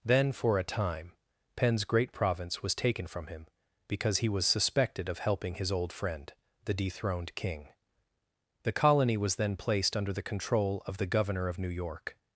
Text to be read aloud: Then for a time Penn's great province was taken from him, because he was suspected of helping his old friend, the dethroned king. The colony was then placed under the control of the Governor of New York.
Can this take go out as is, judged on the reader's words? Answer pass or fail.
pass